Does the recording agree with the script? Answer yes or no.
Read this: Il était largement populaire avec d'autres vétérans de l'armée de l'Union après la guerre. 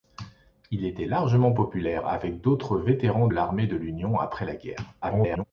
no